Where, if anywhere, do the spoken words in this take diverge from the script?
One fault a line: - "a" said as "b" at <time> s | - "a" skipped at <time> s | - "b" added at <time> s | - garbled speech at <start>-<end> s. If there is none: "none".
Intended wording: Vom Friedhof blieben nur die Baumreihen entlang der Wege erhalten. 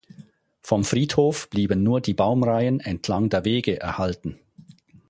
none